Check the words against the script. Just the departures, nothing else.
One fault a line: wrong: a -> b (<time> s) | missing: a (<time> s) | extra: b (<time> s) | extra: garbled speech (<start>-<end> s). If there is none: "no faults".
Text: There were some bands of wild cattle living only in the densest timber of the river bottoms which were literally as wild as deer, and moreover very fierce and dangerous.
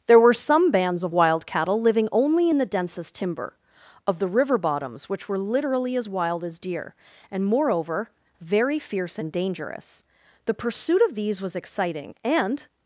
extra: The pursuit of these was exciting and (10.4 s)